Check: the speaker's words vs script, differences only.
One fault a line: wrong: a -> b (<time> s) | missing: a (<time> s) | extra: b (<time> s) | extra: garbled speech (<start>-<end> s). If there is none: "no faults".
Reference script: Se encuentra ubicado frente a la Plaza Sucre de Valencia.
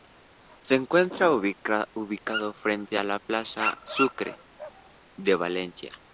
no faults